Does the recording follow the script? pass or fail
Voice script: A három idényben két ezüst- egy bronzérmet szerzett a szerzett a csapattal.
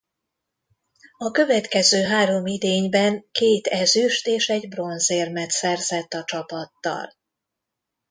fail